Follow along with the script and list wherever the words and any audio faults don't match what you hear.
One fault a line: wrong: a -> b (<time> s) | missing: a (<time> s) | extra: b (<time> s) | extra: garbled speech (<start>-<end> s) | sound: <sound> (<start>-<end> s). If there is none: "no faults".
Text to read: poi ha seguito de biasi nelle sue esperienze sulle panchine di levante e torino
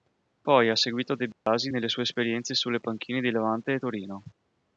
sound: dropout (1.3-1.5 s)